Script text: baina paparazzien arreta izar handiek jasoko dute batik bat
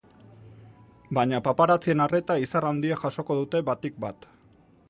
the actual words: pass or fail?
pass